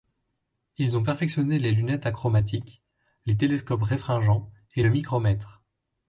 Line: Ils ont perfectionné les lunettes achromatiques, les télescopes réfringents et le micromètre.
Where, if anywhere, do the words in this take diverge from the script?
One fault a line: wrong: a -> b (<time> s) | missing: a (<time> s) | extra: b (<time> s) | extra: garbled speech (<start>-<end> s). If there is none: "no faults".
no faults